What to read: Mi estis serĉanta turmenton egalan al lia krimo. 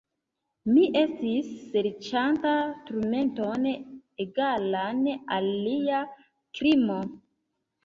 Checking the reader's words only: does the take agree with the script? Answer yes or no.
yes